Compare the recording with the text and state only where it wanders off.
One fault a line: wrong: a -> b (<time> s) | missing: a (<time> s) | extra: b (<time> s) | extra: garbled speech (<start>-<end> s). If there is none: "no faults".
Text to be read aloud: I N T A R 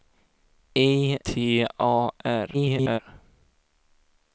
missing: N (1.2 s)
extra: garbled speech (2.5-3.0 s)